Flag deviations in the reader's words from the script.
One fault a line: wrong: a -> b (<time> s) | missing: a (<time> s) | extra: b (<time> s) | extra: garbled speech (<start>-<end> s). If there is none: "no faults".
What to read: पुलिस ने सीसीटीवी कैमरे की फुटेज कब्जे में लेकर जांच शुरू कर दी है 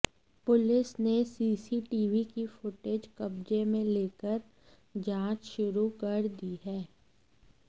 missing: कैमरे (2.2 s)